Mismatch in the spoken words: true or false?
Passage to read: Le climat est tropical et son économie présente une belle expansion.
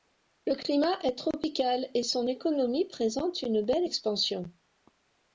false